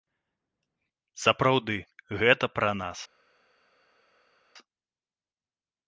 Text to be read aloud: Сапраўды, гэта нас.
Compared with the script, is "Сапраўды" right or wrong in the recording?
right